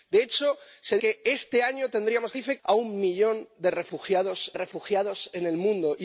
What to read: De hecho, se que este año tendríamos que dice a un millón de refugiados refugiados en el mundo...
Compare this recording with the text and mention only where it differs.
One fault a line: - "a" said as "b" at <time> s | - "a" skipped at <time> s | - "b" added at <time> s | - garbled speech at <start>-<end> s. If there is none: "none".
none